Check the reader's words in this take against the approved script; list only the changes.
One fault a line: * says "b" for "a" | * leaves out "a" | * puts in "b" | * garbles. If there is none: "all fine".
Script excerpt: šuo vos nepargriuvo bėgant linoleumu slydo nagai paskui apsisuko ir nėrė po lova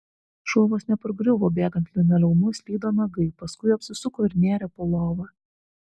all fine